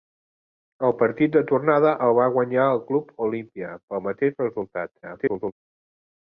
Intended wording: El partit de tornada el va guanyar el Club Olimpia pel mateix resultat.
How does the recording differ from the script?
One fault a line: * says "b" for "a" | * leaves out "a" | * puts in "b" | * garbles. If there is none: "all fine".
* garbles